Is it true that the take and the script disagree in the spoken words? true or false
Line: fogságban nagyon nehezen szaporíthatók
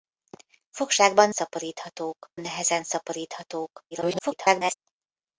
true